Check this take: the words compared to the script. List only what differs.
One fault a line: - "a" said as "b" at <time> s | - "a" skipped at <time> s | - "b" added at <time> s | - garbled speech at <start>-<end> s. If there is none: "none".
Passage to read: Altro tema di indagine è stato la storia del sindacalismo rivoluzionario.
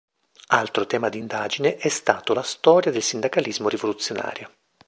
none